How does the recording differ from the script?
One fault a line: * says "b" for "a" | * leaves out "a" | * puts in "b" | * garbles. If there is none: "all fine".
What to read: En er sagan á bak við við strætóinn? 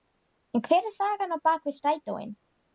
* puts in "hver"
* leaves out "við"